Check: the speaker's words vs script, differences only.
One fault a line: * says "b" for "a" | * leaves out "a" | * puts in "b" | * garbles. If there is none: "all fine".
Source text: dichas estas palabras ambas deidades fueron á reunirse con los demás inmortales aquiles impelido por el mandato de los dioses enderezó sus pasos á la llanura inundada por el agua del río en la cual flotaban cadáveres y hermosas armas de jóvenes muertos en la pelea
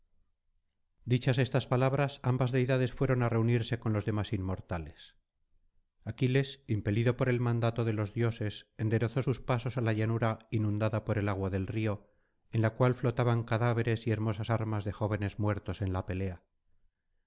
all fine